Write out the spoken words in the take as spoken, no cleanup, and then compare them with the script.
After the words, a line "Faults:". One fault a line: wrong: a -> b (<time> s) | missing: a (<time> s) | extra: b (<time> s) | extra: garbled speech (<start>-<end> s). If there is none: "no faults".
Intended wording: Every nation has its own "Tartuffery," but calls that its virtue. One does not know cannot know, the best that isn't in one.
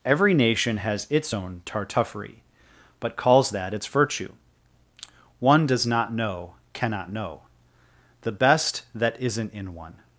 Every nation has its own "Tartuffery," but calls that its virtue. One does not know cannot know, the best that isn't in one.
Faults:
no faults